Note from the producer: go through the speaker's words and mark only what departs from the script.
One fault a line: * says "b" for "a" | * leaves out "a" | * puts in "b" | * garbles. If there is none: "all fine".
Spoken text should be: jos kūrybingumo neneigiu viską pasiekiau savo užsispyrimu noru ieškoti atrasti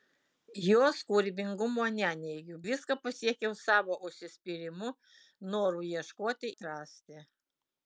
all fine